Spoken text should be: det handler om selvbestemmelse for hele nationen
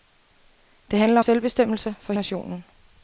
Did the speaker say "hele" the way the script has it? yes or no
no